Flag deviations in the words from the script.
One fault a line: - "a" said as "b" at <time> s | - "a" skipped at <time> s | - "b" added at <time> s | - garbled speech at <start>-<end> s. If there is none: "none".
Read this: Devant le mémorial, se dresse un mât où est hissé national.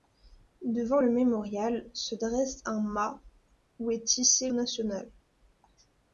none